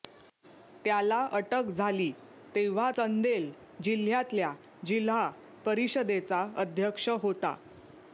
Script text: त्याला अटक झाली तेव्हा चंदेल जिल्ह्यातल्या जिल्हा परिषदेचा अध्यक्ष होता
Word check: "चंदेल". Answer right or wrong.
right